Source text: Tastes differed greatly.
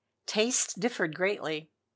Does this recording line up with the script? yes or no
yes